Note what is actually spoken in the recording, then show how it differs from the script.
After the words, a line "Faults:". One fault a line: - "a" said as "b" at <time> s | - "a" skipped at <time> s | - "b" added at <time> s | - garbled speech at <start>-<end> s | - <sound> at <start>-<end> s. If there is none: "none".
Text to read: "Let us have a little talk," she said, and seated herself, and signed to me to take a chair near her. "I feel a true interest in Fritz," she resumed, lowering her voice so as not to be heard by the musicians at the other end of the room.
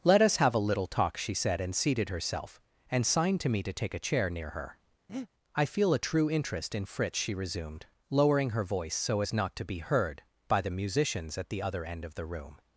"Let us have a little talk," she said, and seated herself, and signed to me to take a chair near her. "I feel a true interest in Fritz," she resumed, lowering her voice so as not to be heard by the musicians at the other end of the room.
Faults:
- breath at 5.1-5.3 s